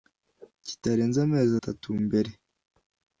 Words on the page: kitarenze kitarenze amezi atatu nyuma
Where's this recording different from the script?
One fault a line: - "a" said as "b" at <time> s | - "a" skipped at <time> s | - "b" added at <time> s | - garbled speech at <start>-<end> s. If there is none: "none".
- "kitarenze" skipped at 1.2 s
- "nyuma" said as "mbere" at 2.1 s